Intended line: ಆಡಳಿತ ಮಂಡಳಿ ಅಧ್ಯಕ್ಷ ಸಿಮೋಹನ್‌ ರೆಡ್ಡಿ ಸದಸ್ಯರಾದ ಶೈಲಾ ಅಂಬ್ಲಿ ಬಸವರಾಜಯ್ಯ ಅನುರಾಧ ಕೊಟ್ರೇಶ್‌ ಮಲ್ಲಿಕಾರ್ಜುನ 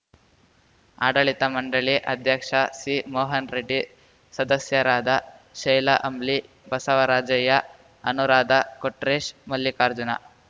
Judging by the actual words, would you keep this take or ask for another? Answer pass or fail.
pass